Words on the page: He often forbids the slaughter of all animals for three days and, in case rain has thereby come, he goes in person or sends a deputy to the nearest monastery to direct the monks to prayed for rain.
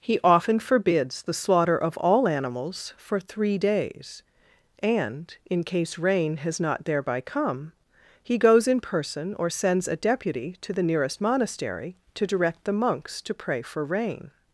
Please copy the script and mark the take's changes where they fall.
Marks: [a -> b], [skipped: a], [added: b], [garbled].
He often forbids the slaughter of all animals for three days and, in case rain has [added: not] thereby come, he goes in person or sends a deputy to the nearest monastery to direct the monks to [prayed -> pray] for rain.